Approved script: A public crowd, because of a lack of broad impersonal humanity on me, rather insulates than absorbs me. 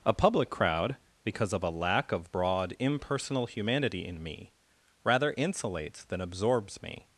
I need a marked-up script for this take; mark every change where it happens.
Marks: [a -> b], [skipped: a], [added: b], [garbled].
A public crowd, because of a lack of broad impersonal humanity [on -> in] me, rather insulates than absorbs me.